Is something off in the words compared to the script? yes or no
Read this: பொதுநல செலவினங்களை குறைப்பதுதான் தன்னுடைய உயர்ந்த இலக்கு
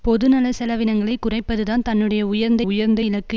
yes